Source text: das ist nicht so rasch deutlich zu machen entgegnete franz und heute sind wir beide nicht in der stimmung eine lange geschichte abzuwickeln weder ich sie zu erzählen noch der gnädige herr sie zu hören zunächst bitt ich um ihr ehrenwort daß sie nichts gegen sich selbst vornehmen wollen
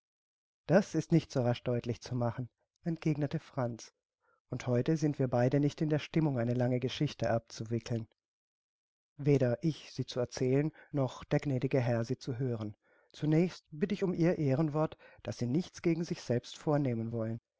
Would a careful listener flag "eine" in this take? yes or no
no